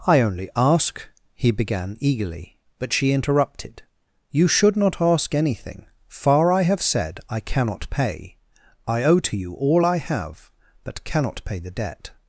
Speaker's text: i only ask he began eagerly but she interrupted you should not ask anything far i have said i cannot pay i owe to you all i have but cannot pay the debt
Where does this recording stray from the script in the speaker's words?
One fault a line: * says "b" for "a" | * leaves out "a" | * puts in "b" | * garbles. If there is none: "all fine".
all fine